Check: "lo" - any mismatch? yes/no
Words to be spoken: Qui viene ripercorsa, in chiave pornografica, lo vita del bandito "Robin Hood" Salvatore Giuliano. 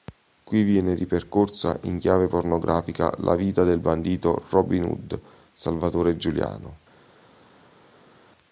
yes